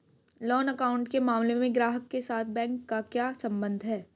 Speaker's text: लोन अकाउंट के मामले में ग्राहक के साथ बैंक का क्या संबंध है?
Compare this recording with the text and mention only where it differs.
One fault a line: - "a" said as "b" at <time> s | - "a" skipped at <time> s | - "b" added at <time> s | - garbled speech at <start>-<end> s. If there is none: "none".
none